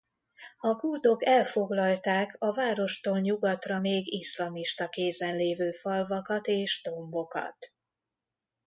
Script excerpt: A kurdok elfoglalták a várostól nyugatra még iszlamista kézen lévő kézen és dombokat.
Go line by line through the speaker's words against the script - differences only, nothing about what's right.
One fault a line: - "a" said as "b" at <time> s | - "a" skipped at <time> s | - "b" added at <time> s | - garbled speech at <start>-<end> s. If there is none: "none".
- "kézen" said as "falvakat" at 5.7 s